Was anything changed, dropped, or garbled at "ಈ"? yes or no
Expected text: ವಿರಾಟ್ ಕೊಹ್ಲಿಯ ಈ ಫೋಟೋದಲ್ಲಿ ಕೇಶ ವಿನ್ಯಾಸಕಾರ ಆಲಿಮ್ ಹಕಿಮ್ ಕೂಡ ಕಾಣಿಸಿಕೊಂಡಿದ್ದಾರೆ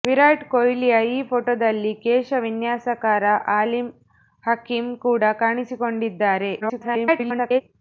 no